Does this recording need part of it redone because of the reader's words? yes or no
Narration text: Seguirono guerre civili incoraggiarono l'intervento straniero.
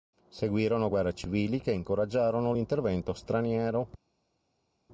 yes